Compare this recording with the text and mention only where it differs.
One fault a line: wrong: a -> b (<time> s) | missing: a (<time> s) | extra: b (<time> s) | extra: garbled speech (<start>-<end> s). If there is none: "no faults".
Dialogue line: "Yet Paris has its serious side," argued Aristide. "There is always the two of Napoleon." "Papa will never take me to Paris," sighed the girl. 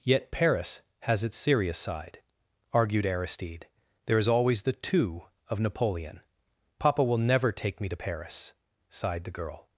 no faults